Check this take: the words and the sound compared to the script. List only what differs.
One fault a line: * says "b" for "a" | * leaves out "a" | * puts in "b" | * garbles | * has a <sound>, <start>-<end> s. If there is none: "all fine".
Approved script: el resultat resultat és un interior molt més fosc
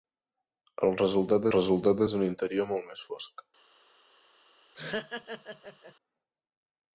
* has a laugh, 4.7-5.9 s